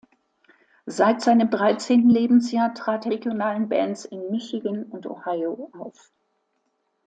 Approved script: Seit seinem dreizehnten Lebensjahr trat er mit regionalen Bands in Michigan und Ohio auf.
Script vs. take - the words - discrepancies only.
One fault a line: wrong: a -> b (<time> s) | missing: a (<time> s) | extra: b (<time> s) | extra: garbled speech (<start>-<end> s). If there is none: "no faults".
missing: mit (3.1 s)